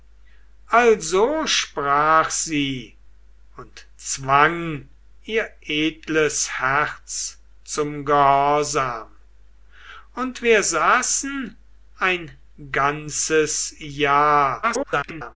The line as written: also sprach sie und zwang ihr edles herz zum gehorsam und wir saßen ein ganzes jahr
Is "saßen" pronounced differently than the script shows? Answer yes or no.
no